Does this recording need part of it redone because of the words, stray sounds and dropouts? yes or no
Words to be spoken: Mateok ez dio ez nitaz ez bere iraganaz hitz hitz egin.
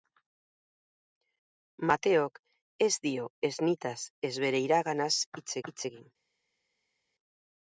no